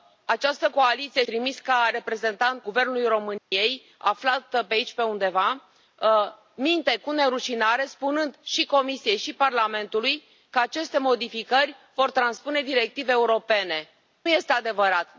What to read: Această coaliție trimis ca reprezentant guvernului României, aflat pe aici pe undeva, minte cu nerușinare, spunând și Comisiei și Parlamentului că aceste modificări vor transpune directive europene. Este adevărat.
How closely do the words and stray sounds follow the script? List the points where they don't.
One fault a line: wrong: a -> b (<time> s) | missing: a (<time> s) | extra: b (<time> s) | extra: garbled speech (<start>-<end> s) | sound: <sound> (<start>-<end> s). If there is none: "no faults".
sound: dropout (3.4-3.5 s)